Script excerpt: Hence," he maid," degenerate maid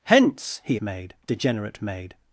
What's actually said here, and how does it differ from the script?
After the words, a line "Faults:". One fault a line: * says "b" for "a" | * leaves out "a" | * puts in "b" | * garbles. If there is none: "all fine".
Hence," he maid," degenerate maid
Faults:
all fine